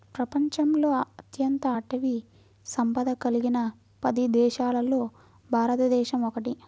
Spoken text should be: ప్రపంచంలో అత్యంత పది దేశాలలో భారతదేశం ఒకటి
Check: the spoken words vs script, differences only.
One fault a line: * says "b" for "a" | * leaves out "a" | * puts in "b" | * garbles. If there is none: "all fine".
* puts in "అటవీ సంపద కలిగిన"